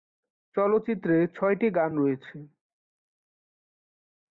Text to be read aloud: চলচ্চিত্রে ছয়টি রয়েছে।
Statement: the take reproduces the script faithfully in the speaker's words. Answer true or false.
false